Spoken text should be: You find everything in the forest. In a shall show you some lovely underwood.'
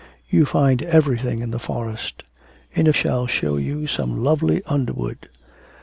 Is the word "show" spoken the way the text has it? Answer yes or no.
yes